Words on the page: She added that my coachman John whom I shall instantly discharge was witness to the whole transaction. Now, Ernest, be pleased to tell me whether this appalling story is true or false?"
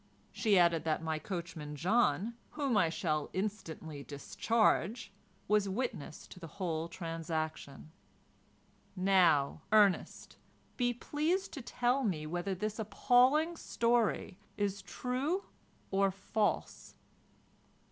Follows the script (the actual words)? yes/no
yes